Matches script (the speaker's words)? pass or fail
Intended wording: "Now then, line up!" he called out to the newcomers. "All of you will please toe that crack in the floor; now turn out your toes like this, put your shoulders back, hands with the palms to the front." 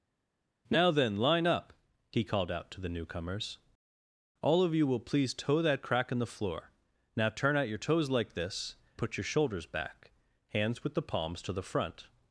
pass